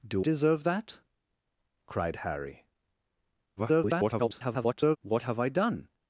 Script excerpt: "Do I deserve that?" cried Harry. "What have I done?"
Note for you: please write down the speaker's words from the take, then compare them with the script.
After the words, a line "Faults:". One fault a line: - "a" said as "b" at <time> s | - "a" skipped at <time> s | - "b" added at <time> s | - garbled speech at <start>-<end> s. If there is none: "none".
"Do deserve that?" cried Harry. [garbled] "What have I done?"
Faults:
- "I" skipped at 0.3 s
- garbled speech at 3.6-5.0 s